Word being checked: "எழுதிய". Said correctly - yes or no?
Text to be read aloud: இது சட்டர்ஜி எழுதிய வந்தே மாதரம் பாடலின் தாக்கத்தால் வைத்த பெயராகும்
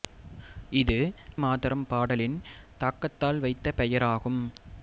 no